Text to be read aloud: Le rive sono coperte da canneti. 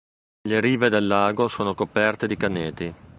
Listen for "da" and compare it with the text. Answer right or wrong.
wrong